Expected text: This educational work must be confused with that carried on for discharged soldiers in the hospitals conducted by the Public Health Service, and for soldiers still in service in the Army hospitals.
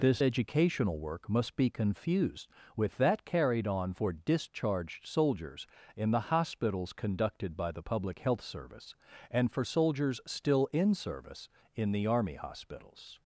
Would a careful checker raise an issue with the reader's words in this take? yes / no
no